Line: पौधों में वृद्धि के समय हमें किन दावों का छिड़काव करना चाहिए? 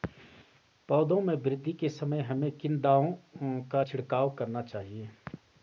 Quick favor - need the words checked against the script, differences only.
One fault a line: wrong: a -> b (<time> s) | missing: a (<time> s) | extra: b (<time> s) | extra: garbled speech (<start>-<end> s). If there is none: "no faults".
no faults